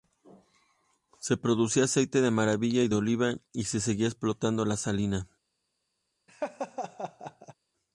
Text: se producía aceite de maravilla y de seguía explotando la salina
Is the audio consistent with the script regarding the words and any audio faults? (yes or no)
no